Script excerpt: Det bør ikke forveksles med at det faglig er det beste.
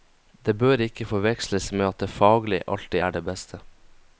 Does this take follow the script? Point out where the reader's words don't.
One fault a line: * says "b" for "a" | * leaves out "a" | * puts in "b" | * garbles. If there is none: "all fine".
* puts in "alltid"